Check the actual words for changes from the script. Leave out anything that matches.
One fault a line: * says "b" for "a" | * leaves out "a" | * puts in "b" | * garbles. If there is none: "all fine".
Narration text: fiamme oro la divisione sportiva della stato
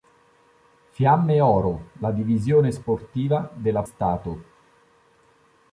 all fine